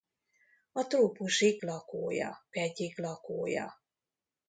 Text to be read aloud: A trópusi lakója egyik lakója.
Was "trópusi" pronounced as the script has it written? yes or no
yes